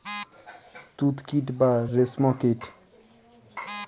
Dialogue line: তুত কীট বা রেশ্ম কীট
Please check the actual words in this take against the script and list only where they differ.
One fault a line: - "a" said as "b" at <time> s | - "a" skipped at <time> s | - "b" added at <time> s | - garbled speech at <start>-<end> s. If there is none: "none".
none